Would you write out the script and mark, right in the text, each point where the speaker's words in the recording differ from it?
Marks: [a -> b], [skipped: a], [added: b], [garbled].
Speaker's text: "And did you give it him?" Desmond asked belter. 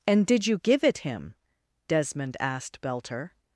"And did you give it him?" Desmond asked belter.